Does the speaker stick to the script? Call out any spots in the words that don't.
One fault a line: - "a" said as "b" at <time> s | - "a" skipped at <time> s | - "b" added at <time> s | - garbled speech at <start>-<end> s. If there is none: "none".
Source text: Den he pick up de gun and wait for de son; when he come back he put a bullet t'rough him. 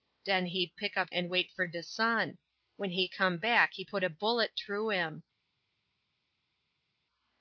- "de gun" skipped at 1.1 s